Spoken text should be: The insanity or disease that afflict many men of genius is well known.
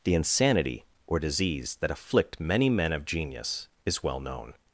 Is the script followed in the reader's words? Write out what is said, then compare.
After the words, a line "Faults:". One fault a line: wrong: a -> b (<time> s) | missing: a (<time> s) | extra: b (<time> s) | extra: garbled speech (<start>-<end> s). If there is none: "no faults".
The insanity or disease that afflict many men of genius is well known.
Faults:
no faults